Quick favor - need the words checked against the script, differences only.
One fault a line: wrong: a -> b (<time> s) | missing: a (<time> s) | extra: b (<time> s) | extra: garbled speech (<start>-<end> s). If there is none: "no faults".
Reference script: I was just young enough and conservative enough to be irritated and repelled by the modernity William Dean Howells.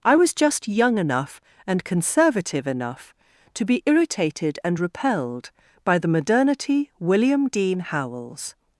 no faults